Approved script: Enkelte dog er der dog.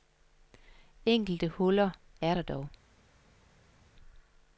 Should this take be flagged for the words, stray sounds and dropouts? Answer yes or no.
yes